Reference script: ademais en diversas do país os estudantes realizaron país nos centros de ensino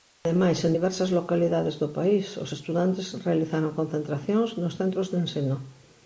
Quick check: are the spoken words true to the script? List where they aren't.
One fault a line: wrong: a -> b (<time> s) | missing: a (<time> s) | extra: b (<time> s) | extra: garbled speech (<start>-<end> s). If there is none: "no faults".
extra: localidades (1.2 s)
wrong: país -> concentracións (3.8 s)